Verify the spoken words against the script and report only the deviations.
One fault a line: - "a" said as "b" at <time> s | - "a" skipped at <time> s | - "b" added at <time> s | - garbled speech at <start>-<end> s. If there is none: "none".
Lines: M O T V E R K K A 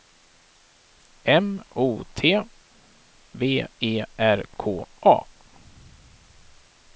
- "K" skipped at 4.9 s